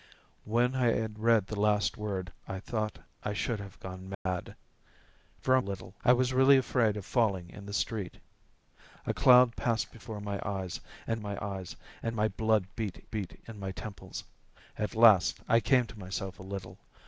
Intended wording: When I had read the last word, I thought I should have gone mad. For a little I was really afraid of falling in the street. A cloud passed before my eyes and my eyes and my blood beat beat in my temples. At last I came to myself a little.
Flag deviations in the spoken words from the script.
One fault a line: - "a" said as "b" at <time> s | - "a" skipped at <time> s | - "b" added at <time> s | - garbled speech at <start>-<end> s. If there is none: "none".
none